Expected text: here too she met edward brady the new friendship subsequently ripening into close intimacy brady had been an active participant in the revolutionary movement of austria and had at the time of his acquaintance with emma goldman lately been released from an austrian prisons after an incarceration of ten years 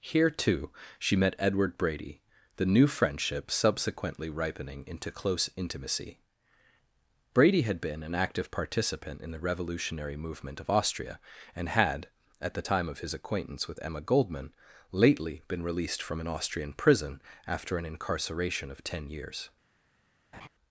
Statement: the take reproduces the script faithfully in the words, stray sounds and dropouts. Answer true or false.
false